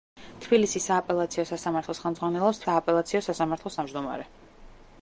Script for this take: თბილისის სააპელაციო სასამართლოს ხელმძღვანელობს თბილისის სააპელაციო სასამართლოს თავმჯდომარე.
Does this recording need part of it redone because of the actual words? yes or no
yes